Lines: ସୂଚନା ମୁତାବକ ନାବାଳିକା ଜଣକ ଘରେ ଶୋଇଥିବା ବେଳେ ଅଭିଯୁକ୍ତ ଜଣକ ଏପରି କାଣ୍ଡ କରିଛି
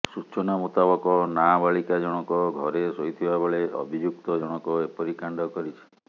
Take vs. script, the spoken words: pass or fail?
pass